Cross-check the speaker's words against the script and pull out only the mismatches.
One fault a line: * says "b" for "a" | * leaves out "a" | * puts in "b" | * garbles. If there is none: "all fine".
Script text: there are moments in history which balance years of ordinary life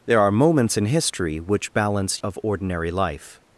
* leaves out "years"